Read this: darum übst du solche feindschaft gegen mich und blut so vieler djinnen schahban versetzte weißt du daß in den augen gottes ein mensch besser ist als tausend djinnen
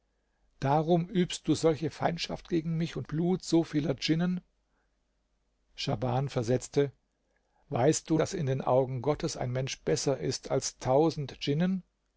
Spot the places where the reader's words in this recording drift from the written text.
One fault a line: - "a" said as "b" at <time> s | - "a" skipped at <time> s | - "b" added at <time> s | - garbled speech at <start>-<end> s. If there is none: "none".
none